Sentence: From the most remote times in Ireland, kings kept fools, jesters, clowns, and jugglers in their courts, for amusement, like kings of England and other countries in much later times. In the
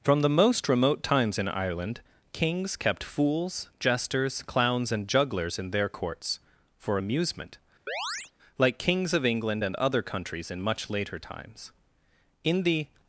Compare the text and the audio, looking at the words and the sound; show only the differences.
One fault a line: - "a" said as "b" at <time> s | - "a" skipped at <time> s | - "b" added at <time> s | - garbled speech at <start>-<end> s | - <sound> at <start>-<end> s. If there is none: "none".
- chirp at 7.9-8.3 s